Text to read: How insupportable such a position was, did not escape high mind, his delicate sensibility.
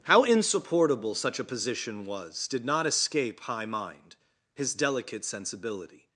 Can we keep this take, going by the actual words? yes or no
yes